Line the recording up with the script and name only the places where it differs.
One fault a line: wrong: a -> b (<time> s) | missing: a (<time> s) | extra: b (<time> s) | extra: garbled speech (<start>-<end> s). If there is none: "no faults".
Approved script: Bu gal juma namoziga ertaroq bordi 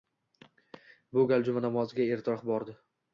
no faults